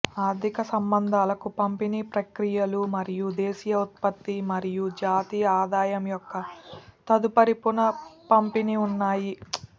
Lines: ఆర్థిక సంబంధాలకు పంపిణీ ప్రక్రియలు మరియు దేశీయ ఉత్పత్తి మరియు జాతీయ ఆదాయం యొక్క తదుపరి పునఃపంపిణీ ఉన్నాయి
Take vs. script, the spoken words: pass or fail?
pass